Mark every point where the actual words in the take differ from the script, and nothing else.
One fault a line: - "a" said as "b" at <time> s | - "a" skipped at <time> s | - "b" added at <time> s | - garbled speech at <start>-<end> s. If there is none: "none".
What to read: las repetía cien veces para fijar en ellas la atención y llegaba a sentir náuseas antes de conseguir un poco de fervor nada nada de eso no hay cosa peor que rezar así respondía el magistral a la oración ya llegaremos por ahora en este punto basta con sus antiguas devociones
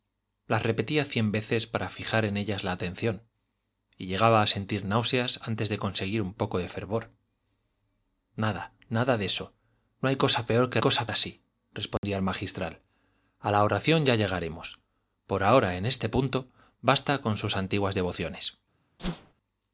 - "rezar" said as "cosa" at 10.8 s